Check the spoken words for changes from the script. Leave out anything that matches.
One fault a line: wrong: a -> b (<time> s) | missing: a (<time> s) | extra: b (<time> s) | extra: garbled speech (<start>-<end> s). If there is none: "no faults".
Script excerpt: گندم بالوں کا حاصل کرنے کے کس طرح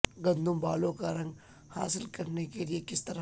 extra: رنگ (1.1 s)
extra: لئے (2.6 s)